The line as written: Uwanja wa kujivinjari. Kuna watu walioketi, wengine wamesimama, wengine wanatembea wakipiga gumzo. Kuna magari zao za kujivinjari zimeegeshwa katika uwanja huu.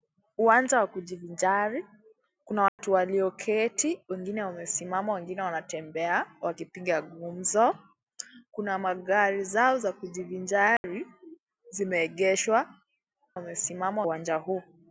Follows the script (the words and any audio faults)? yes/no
no